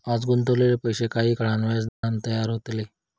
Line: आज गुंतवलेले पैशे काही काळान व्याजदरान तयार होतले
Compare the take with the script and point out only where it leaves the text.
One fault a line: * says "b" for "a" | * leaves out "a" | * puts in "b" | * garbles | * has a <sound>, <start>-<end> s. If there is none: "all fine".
* has a dropout, 1.9-2.0 s